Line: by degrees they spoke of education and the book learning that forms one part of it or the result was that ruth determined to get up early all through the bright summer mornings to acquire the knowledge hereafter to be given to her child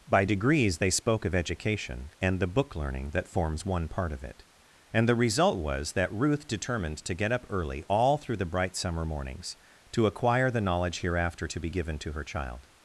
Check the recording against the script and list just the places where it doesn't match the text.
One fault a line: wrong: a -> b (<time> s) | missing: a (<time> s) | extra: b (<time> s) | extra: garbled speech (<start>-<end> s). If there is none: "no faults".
wrong: or -> and (4.9 s)